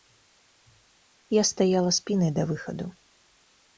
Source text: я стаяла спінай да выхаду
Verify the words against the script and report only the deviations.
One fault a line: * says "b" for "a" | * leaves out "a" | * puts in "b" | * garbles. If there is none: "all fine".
all fine